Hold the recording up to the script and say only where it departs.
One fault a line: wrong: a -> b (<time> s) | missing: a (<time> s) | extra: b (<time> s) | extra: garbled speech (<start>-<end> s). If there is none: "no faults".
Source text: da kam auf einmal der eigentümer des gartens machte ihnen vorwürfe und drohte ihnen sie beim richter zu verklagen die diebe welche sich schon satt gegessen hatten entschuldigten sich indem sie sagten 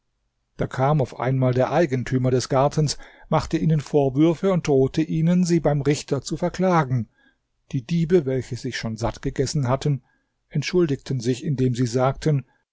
no faults